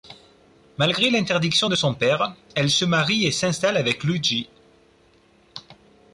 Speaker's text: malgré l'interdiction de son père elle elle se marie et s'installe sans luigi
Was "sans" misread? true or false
true